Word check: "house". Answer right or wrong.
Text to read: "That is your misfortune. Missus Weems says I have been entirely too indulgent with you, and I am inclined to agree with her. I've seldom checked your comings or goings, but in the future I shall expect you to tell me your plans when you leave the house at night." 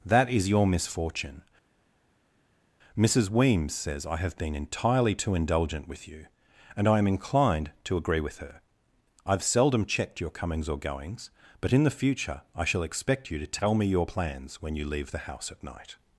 right